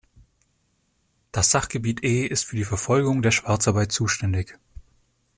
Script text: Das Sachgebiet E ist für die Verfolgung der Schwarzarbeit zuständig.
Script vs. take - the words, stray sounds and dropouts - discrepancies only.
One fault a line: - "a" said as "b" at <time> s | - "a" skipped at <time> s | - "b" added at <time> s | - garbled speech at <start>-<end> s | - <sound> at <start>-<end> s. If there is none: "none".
none